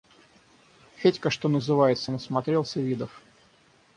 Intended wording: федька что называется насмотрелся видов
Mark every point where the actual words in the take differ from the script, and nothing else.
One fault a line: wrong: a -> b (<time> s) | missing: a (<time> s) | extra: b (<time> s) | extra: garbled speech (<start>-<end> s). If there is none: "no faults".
no faults